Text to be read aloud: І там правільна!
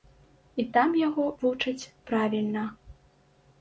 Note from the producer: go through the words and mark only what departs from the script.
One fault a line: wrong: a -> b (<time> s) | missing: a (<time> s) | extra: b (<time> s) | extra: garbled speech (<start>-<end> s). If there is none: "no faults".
extra: яго вучаць (1.0 s)